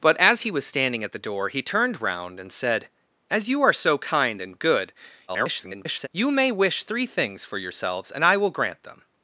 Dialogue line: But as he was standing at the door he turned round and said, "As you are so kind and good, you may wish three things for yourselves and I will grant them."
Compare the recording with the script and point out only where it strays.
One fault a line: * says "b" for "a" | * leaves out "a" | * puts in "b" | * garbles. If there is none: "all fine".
* garbles